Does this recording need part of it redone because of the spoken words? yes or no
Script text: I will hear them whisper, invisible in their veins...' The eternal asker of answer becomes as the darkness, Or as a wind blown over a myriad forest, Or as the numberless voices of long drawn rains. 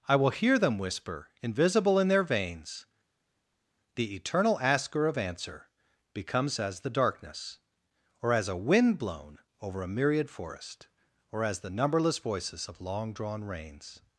no